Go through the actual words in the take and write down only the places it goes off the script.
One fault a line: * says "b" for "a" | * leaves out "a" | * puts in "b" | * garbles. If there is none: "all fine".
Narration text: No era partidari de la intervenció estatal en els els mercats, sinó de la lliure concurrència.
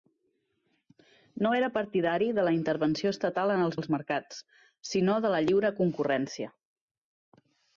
all fine